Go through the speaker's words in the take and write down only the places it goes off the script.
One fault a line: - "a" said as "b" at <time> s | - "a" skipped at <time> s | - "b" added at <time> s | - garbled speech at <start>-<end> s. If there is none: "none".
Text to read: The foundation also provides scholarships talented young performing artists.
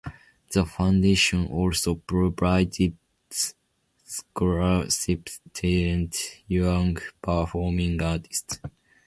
none